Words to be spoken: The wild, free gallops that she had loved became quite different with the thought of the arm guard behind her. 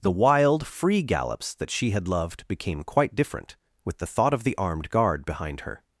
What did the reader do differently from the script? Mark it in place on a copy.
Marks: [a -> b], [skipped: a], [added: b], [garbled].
The wild, free gallops that she had loved became quite different with the thought of the [arm -> armed] guard behind her.